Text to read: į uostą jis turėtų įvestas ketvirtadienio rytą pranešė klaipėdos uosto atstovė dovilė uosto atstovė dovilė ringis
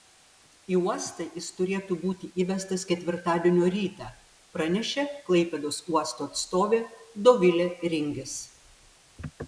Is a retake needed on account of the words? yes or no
yes